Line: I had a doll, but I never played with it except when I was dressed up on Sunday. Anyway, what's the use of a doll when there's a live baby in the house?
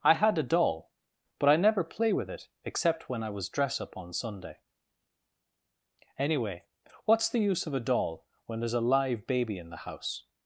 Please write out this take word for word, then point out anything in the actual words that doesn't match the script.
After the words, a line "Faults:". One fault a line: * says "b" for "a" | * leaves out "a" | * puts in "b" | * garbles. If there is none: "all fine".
I had a doll, but I never play with it except when I was dress up on Sunday. Anyway, what's the use of a doll when there's a live baby in the house?
Faults:
* says "play" for "played"
* says "dress" for "dressed"